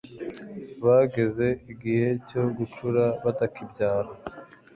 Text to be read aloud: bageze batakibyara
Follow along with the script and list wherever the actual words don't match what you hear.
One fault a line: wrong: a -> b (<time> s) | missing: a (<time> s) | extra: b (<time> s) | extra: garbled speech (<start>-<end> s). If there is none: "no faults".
extra: igihe cyo gucura (1.7 s)